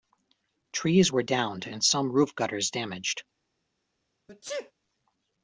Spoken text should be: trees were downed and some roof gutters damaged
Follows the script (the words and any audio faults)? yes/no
no